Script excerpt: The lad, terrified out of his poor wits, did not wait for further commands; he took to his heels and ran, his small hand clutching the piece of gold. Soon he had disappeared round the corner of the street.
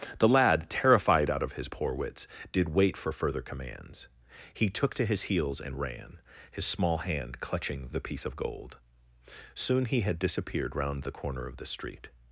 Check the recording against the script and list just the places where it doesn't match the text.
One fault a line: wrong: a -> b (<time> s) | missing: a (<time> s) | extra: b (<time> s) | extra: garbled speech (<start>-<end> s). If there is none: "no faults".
missing: not (2.7 s)